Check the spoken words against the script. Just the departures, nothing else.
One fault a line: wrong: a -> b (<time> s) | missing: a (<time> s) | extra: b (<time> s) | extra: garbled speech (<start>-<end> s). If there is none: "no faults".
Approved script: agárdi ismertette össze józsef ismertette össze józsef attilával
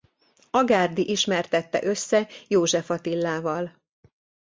missing: ismertette össze józsef (2.9 s)